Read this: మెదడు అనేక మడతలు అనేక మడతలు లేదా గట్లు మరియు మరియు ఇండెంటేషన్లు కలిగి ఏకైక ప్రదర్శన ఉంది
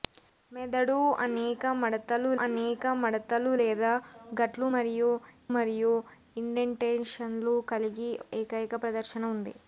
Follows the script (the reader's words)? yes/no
yes